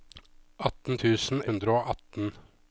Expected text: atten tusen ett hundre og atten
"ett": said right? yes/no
no